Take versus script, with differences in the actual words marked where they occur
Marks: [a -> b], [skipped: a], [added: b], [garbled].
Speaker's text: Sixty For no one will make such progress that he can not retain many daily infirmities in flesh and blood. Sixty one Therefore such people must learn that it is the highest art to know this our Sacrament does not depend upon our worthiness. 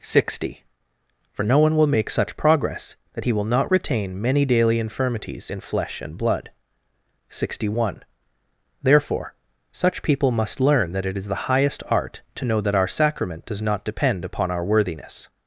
Sixty For no one will make such progress that he [can -> will] not retain many daily infirmities in flesh and blood. Sixty one Therefore such people must learn that it is the highest art to know [this -> that] our Sacrament does not depend upon our worthiness.